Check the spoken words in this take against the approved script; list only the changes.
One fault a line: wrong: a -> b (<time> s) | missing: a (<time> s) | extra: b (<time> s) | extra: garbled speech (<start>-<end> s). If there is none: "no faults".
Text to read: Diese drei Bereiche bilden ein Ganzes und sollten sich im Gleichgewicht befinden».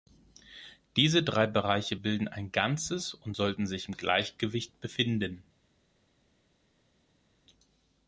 no faults